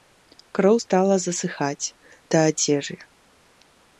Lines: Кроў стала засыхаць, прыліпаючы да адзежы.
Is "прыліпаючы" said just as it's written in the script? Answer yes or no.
no